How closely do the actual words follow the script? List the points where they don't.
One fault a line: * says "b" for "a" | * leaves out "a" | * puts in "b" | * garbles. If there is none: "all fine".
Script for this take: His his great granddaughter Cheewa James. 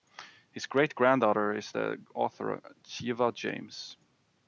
* leaves out "his"
* puts in "is the author"